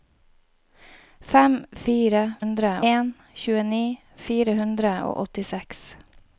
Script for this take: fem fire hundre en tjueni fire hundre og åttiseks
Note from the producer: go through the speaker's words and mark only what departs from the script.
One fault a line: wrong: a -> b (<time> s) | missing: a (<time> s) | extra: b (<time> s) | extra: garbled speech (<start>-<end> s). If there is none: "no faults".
no faults